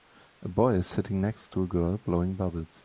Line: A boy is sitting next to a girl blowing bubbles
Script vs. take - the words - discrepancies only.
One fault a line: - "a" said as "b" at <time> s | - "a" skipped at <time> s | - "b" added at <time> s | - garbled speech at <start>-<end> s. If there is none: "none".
none